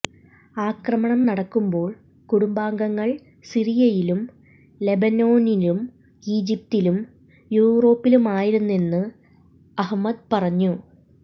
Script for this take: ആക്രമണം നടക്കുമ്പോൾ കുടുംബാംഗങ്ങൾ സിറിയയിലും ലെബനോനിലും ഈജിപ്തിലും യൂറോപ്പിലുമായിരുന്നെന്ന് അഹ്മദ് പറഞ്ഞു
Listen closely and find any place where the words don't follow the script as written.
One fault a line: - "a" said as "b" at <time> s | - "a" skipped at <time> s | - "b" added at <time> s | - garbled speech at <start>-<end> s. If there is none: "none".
none